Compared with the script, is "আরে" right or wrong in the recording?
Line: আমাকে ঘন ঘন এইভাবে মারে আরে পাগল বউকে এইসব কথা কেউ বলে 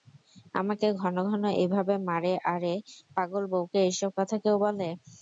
right